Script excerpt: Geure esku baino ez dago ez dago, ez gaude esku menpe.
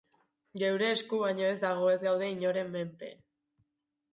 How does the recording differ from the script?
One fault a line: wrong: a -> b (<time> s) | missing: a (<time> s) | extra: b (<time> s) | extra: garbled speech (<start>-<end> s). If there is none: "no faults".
missing: dago ez (2.0 s)
wrong: esku -> inoren (2.4 s)